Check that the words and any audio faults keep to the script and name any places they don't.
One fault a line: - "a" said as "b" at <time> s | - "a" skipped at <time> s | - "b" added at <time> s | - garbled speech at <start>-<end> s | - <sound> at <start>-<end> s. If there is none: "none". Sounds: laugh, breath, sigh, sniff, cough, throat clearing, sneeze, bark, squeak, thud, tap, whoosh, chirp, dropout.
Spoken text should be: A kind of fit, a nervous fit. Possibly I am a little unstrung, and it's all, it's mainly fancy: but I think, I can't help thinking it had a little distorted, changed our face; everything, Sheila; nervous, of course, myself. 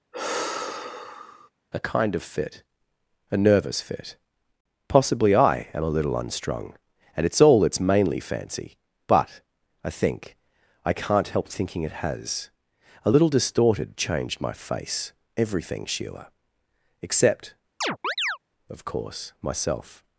- sigh at 0.1-1.5 s
- "had" said as "has" at 12.0 s
- "our" said as "my" at 14.4 s
- "nervous" said as "except" at 17.0 s
- chirp at 17.8-18.4 s